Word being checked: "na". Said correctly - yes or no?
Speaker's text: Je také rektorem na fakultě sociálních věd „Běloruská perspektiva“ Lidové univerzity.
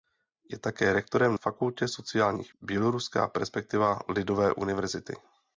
no